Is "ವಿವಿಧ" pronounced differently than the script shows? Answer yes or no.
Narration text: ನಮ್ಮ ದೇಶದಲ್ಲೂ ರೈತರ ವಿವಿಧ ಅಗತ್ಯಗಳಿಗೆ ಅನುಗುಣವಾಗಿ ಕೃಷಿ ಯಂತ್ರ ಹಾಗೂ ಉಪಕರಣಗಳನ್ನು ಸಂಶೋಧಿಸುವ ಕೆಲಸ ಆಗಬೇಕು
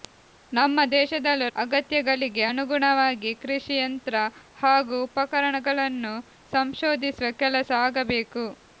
yes